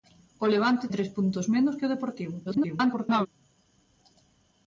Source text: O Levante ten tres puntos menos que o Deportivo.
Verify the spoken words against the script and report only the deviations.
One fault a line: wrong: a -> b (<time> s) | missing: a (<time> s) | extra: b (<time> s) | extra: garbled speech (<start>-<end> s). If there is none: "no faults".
missing: ten (0.8 s)
extra: garbled speech (2.4-3.3 s)